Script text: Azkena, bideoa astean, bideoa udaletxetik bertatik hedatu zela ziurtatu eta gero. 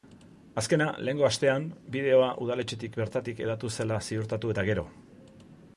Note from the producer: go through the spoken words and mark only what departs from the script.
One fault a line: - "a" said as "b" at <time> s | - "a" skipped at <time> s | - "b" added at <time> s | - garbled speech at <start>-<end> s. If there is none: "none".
- "bideoa" said as "lehengo" at 1.1 s